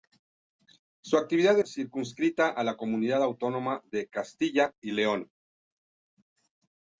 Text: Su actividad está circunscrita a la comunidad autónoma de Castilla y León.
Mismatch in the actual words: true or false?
true